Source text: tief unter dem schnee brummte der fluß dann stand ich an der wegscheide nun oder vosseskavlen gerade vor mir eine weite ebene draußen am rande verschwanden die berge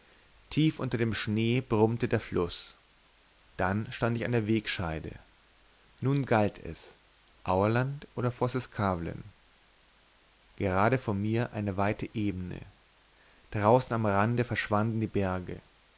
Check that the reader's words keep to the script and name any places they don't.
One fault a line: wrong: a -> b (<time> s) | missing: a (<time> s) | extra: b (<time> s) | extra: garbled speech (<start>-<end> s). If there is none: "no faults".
extra: galt es aurland (6.2 s)